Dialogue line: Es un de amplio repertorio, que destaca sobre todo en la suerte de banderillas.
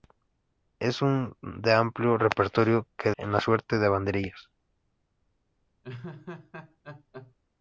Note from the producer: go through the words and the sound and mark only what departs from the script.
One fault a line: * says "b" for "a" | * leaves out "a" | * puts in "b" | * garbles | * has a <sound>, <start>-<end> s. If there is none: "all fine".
* leaves out "destaca sobre todo"
* has a laugh, 5.8-7.3 s